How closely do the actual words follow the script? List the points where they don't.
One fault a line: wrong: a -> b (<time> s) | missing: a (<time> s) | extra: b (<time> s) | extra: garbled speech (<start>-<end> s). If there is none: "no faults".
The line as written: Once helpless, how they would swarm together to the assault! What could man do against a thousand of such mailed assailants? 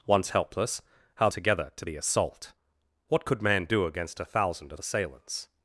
missing: they would swarm (1.3 s)
missing: such mailed (4.8 s)